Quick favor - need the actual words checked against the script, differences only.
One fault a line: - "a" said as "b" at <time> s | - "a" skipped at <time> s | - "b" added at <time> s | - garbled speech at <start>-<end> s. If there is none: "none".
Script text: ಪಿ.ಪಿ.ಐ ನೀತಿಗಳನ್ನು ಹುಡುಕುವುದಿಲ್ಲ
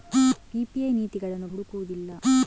none